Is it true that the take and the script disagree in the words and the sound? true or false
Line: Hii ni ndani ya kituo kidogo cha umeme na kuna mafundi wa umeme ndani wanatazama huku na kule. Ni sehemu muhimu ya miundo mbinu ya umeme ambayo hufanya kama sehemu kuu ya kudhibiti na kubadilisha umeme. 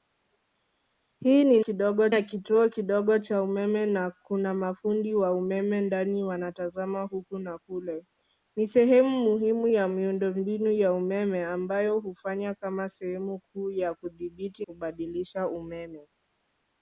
true